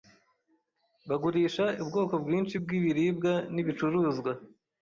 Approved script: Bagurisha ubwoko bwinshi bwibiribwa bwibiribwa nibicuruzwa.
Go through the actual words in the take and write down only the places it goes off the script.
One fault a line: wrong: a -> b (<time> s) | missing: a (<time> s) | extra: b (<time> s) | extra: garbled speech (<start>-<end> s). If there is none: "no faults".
missing: bwibiribwa (3.3 s)